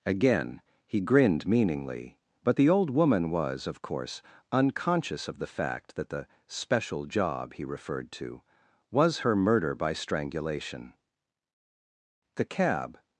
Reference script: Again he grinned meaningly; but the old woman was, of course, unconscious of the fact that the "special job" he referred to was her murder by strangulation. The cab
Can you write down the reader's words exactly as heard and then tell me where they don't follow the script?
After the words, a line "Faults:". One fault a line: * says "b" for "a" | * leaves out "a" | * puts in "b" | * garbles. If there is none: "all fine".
Again he grinned meaningly; but the old woman was, of course, unconscious of the fact that the "special job" he referred to was her murder by strangulation. The cab
Faults:
all fine